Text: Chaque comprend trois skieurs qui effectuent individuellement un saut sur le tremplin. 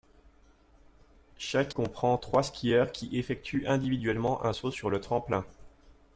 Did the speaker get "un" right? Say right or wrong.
right